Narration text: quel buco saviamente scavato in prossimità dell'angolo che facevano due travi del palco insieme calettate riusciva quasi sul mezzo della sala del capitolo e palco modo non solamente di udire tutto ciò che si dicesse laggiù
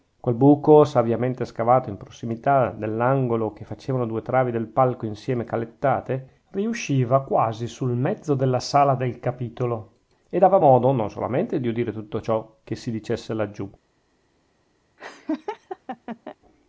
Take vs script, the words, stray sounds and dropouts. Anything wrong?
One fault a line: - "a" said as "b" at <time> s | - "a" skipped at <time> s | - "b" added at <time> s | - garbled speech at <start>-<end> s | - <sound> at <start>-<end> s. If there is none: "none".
- "palco" said as "dava" at 10.4 s
- laugh at 15.0-16.4 s